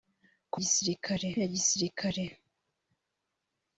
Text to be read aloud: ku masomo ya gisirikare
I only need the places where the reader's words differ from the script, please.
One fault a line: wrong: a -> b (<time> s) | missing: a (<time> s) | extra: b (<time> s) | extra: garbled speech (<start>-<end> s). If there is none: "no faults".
wrong: masomo -> gisirikare (0.6 s)